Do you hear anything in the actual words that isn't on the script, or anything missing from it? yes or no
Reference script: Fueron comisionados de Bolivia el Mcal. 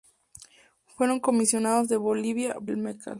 no